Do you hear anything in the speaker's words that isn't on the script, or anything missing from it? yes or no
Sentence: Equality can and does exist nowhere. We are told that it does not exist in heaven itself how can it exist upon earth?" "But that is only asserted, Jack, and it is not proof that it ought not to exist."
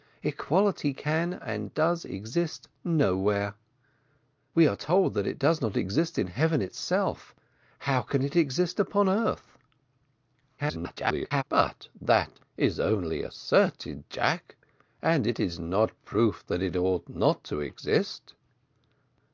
yes